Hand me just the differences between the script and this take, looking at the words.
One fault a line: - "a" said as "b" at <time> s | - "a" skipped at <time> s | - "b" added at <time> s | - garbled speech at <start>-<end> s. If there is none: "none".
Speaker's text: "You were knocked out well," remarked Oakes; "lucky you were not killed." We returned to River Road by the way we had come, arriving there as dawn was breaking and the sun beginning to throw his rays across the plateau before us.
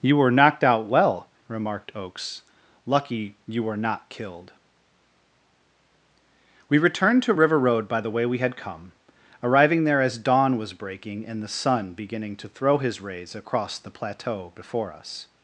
none